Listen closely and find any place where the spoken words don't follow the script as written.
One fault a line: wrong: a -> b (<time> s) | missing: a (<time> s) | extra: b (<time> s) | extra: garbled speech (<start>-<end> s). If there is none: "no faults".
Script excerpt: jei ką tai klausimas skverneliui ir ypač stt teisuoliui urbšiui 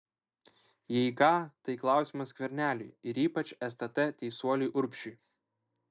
no faults